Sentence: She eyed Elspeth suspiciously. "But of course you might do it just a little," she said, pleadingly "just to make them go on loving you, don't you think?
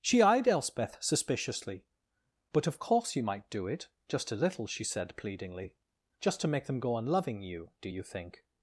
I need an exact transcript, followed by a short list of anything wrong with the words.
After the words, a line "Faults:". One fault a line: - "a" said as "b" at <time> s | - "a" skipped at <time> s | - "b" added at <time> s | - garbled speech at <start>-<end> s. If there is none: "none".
She eyed Elspeth suspiciously. "But of course you might do it just a little," she said, pleadingly "just to make them go on loving you, do you think?
Faults:
- "don't" said as "do" at 7.8 s